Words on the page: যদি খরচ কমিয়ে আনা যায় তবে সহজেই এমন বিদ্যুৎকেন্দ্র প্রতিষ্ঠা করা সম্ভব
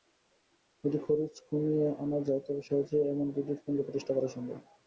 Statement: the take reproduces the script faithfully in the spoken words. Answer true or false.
true